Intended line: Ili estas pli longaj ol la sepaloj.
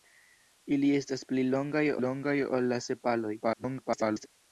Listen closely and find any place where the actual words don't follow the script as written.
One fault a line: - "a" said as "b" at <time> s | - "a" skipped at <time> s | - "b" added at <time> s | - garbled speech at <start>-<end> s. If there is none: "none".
- "longaj" added at 2.0 s
- garbled speech at 3.4-4.3 s